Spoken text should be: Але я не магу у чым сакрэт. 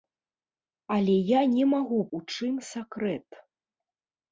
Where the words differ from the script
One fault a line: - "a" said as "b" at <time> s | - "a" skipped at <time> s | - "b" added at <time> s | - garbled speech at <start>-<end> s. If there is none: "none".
none